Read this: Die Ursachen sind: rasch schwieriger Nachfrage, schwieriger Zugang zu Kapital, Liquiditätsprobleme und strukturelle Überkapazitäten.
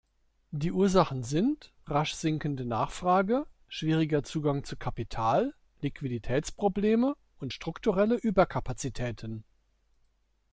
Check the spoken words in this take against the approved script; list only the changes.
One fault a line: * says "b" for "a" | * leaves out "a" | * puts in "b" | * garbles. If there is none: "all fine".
* says "sinkende" for "schwieriger"